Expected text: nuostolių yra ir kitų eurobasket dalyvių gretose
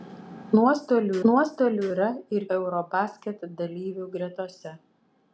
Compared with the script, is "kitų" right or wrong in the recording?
wrong